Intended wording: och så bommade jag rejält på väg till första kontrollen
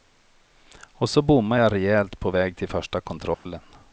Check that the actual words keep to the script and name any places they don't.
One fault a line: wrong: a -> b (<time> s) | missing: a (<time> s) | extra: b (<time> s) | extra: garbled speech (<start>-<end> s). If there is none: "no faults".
no faults